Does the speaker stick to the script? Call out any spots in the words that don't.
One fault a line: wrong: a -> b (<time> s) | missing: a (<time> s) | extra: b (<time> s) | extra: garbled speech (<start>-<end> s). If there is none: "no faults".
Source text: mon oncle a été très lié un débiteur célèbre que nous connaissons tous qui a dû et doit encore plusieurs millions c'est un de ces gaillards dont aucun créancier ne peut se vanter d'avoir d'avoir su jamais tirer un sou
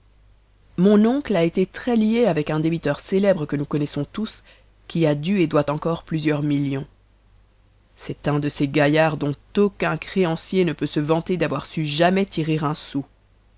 extra: avec (2.2 s)
missing: d'avoir (11.7 s)